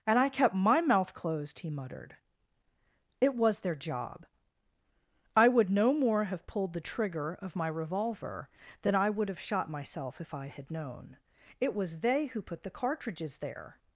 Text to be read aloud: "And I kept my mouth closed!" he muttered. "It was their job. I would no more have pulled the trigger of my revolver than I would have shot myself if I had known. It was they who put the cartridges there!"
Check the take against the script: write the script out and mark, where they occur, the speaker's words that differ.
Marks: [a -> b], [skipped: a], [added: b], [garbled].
"And I kept my mouth closed!" he muttered. "It was their job. I would no more have pulled the trigger of my revolver than I would have shot myself if I had known. It was they who put the cartridges there!"